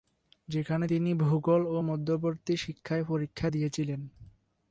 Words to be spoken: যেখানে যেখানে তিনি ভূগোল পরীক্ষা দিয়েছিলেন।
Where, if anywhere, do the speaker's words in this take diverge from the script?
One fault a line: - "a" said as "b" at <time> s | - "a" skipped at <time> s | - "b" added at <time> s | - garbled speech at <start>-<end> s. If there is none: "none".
- "যেখানে" skipped at 0.9 s
- "ও মধ্যবর্তী শিক্ষায়" added at 1.7 s